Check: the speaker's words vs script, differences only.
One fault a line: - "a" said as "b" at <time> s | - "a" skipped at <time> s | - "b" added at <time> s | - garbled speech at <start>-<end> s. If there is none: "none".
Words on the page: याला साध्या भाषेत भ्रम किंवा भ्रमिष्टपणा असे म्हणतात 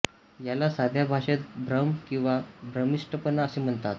none